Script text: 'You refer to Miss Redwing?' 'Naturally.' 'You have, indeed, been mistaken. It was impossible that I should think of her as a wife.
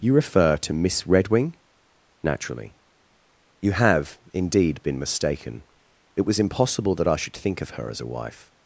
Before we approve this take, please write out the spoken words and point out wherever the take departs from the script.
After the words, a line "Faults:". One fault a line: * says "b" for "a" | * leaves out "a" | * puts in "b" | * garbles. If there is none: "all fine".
'You refer to Miss Redwing?' 'Naturally.' 'You have, indeed, been mistaken. It was impossible that I should think of her as a wife.
Faults:
all fine